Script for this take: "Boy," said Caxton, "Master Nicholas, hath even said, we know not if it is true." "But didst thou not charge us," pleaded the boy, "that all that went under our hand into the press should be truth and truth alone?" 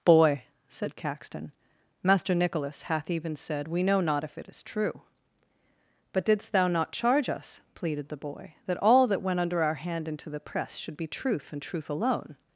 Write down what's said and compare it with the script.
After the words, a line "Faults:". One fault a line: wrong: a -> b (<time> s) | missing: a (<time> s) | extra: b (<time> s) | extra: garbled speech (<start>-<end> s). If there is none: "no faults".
"Boy," said Caxton, "Master Nicholas, hath even said, we know not if it is true." "But didst thou not charge us," pleaded the boy, "that all that went under our hand into the press should be truth and truth alone?"
Faults:
no faults